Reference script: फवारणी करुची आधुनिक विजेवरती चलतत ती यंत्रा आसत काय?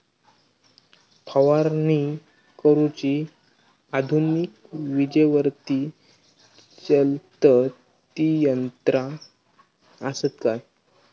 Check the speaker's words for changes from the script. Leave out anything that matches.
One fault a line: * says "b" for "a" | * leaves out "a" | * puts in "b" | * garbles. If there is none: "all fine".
all fine